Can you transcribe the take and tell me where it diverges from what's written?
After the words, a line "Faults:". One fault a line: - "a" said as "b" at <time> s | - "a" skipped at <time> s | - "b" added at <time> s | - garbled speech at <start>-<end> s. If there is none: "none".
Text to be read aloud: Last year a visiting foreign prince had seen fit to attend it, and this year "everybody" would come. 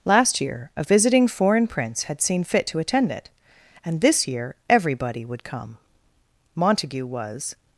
Last year a visiting foreign prince had seen fit to attend it, and this year "everybody" would come. Montague was
Faults:
- "Montague was" added at 6.5 s